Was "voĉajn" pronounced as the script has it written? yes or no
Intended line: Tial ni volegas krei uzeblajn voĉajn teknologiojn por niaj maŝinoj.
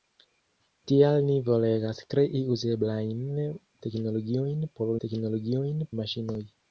no